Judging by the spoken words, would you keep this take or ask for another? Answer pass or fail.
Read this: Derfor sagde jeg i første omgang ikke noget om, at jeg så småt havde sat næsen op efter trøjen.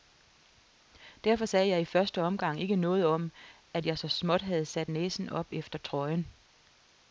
pass